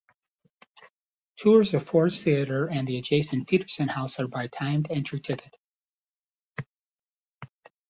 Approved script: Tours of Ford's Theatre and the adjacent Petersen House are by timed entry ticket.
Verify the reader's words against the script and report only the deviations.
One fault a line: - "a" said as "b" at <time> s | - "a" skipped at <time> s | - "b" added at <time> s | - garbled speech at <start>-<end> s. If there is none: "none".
none